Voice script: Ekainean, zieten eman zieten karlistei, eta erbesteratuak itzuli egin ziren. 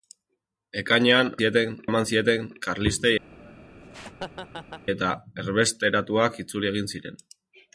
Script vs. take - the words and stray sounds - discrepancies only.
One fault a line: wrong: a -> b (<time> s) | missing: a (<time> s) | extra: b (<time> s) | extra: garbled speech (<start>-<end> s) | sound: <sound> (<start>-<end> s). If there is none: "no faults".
sound: laugh (3.3-4.9 s)